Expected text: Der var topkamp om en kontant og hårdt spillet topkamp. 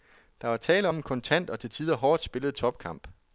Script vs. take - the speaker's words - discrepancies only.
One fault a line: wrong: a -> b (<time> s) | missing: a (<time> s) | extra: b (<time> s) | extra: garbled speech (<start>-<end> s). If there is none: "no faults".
wrong: topkamp -> tale (0.6 s)
extra: til tider (1.6 s)